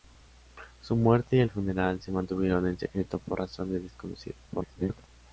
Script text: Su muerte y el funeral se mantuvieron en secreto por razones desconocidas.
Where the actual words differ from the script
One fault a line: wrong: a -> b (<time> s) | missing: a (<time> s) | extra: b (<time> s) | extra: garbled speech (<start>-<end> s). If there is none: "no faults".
extra: garbled speech (4.5-5.1 s)